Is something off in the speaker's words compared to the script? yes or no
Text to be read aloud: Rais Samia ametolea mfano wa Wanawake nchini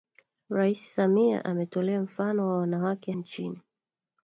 no